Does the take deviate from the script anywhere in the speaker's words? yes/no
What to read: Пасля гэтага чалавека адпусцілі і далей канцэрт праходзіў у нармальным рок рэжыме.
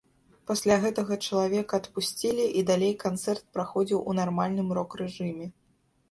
no